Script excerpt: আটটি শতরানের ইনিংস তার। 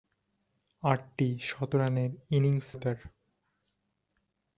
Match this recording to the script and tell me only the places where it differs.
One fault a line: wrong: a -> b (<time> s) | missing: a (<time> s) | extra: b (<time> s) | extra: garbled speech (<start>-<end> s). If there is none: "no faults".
no faults